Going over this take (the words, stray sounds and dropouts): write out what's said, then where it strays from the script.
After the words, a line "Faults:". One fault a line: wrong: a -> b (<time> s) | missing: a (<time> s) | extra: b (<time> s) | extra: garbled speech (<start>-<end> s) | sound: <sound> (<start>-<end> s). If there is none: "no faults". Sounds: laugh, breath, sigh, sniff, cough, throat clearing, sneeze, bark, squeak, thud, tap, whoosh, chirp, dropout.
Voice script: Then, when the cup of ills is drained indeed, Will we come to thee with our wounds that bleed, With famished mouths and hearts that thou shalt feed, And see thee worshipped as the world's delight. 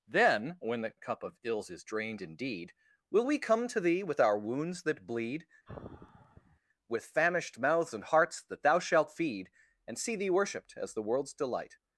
Then, when the cup of ills is drained indeed, Will we come to thee with our wounds that bleed, With famished mouths and hearts that thou shalt feed, And see thee worshipped as the world's delight.
Faults:
sound: sigh (5.7-6.6 s)